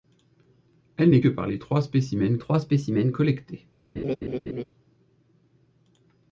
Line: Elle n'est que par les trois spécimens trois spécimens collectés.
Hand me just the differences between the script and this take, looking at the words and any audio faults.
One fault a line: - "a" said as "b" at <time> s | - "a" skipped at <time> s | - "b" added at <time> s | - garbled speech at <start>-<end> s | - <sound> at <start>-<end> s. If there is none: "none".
- laugh at 4.0-4.6 s